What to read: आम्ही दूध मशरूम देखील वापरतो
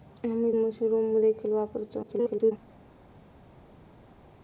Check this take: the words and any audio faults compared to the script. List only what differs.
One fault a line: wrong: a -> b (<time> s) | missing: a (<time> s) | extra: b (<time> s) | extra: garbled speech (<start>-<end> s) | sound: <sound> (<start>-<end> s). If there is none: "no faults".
missing: दूध (0.5 s)
extra: garbled speech (2.0-2.5 s)